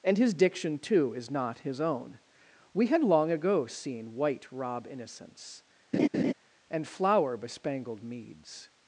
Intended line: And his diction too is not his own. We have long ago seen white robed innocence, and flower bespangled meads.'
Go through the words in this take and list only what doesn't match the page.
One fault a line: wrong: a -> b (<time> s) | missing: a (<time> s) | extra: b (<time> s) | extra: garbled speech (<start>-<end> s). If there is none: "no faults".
wrong: have -> had (2.9 s)
wrong: robed -> rob (4.5 s)